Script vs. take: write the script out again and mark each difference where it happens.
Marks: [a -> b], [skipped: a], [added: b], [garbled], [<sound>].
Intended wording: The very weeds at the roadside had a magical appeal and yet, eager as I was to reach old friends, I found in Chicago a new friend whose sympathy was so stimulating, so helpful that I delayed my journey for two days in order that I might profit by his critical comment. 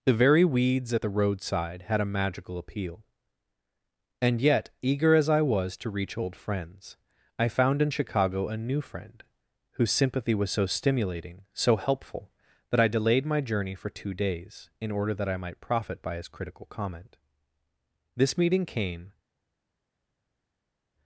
The very weeds at the roadside had a magical appeal and yet, eager as I was to reach old friends, I found in Chicago a new friend whose sympathy was so stimulating, so helpful that I delayed my journey for two days in order that I might profit by his critical comment. [added: This meeting came]